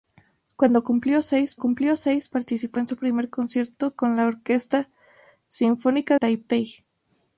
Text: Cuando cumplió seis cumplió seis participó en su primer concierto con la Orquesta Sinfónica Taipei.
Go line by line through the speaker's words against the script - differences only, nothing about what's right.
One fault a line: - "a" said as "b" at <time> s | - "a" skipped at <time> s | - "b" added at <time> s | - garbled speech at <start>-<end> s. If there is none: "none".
none